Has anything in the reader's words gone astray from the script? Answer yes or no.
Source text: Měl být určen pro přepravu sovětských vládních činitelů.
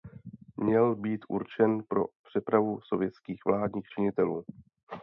no